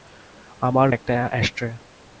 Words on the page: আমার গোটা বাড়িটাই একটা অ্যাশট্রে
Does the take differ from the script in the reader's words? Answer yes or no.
yes